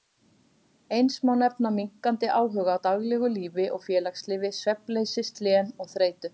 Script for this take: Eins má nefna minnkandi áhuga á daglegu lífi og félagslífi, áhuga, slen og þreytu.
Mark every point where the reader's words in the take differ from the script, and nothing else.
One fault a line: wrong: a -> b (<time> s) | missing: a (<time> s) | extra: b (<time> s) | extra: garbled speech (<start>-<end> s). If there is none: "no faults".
wrong: áhuga -> svefnleysi (4.6 s)